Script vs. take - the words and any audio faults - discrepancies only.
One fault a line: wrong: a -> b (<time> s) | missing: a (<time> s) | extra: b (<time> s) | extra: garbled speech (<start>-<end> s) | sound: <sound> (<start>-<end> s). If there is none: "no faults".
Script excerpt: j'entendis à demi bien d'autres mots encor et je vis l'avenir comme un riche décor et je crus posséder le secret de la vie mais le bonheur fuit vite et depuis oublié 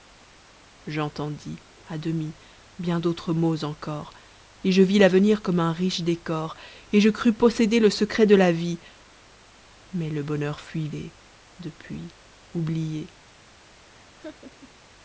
missing: vite (10.9 s)
sound: laugh (13.9-14.8 s)